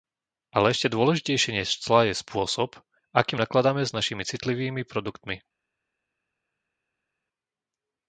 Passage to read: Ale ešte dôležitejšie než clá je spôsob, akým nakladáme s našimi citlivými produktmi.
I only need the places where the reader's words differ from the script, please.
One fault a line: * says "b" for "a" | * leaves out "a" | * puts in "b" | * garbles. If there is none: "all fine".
all fine